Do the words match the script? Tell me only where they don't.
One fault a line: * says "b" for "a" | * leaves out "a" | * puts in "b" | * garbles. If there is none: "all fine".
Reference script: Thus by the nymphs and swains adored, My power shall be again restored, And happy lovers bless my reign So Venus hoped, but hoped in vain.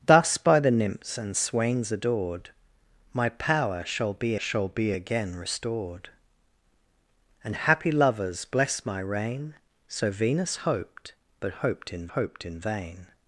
* puts in "shall be"
* puts in "hoped in"